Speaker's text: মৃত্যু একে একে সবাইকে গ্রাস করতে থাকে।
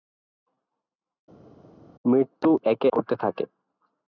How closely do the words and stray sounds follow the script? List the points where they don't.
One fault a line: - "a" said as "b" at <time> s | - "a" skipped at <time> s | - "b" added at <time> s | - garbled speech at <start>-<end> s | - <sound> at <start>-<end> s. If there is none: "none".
- "একে সবাইকে গ্রাস" skipped at 2.9 s